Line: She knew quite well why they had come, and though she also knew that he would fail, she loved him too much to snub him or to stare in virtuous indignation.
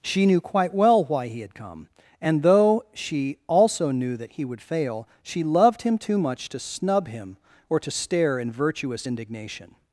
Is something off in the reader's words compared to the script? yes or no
yes